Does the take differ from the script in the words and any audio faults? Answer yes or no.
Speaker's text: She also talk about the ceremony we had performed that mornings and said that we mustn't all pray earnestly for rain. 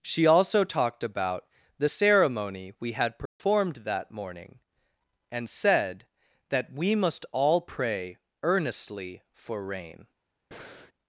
yes